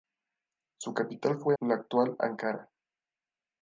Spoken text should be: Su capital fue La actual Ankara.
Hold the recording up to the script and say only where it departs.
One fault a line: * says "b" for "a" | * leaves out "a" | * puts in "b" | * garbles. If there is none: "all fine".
all fine